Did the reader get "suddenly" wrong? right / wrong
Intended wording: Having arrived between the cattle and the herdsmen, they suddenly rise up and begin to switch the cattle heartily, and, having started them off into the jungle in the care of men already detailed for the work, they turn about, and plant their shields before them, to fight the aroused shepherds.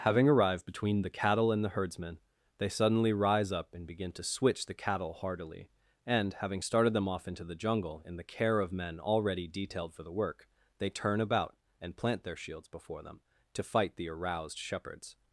right